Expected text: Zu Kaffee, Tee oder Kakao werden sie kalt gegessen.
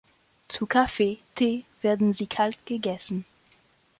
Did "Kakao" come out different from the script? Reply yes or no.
yes